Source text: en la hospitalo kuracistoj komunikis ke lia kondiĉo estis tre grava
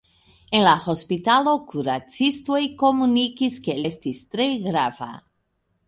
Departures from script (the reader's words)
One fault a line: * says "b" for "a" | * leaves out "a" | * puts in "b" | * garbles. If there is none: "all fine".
* leaves out "lia kondiĉo"